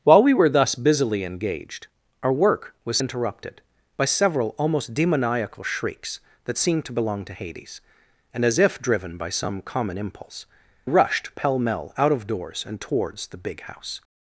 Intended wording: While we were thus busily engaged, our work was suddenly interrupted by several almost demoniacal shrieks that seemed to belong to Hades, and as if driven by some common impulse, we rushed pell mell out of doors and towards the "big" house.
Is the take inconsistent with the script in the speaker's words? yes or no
yes